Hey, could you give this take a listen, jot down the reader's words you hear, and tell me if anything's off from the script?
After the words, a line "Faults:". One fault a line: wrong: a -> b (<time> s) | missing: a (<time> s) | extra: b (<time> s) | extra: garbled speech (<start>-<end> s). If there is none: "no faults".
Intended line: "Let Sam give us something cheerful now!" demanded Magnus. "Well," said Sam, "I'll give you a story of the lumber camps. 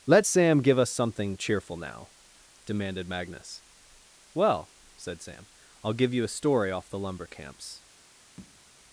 "Let Sam give us something cheerful now!" demanded Magnus. "Well," said Sam, "I'll give you a story off the lumber camps.
Faults:
wrong: of -> off (6.7 s)